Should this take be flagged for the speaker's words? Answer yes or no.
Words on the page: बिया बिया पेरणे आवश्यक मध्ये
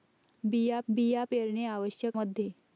no